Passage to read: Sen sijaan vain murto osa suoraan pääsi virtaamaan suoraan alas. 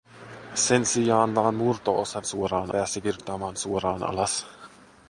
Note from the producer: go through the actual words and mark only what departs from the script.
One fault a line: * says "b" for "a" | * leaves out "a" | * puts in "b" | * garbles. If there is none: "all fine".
all fine